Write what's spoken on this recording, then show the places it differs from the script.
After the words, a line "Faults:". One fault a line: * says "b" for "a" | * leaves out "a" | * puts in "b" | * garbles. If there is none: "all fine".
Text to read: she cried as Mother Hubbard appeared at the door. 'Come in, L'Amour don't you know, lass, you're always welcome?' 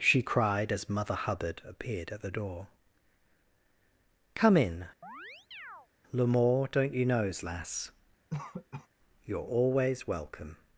she cried as Mother Hubbard appeared at the door. 'Come in, L'Amour don't you knows, lass, you're always welcome?'
Faults:
* says "knows" for "know"